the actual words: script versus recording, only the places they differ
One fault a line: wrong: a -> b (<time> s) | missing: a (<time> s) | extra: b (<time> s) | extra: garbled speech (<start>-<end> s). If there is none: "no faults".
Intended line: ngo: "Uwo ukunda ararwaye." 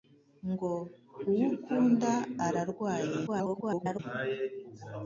extra: garbled speech (3.3-4.0 s)